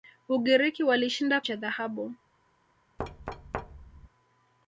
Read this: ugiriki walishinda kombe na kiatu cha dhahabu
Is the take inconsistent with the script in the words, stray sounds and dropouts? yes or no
yes